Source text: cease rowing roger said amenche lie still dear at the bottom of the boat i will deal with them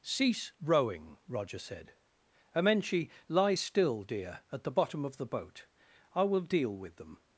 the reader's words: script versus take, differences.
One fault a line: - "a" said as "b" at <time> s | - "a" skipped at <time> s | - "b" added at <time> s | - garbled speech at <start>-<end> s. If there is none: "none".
none